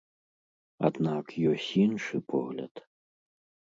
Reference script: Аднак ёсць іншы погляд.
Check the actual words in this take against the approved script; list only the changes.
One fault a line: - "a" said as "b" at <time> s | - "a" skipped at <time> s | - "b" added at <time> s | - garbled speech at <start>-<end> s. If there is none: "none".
none